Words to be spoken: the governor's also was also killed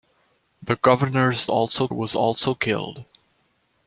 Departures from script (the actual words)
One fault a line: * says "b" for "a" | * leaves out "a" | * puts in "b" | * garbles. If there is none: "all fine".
all fine